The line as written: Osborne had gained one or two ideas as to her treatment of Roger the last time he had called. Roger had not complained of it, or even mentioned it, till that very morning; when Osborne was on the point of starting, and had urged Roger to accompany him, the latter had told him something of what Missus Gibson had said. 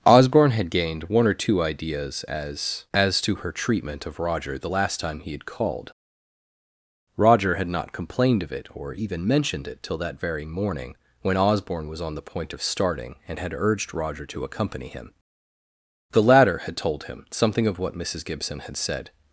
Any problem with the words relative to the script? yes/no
yes